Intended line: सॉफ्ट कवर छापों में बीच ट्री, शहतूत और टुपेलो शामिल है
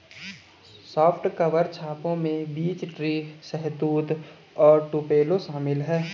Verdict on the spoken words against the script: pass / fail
pass